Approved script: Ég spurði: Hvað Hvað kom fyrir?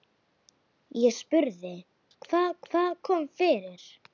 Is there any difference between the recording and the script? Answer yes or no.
no